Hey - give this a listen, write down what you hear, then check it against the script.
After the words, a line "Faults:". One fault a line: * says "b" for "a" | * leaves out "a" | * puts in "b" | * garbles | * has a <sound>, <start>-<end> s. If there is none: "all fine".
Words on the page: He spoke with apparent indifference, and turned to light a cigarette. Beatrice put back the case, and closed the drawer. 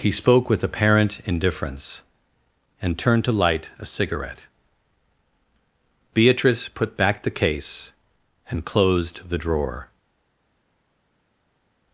He spoke with apparent indifference, and turned to light a cigarette. Beatrice put back the case, and closed the drawer.
Faults:
all fine